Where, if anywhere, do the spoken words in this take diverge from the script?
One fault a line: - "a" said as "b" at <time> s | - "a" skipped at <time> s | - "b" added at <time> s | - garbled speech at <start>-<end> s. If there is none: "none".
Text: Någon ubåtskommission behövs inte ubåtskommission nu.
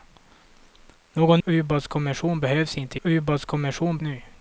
none